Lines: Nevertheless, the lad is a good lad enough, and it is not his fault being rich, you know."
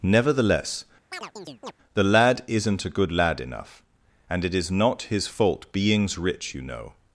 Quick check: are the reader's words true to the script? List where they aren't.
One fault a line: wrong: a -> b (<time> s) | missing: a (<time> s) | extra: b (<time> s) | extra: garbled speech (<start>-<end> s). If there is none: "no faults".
wrong: is -> isn't (2.5 s)
wrong: being -> beings (5.7 s)